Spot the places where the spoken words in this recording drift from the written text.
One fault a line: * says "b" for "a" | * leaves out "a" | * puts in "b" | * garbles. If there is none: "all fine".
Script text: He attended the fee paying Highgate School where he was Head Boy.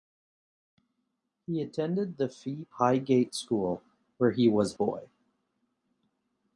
* leaves out "paying"
* leaves out "Head"